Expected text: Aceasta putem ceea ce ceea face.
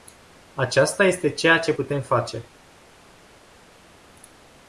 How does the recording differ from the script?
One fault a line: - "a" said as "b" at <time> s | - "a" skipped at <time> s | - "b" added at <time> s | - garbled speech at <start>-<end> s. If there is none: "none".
- "putem" said as "este" at 1.0 s
- "ceea" said as "putem" at 1.7 s